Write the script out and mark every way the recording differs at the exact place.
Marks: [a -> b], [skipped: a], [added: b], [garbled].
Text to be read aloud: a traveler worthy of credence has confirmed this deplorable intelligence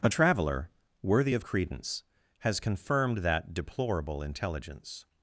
a traveler worthy of credence has confirmed [this -> that] deplorable intelligence